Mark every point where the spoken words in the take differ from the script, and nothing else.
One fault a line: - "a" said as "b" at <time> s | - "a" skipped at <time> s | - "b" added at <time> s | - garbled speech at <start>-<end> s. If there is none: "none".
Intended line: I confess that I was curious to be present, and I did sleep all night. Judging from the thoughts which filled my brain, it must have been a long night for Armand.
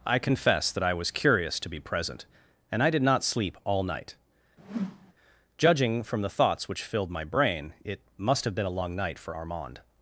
- "not" added at 3.0 s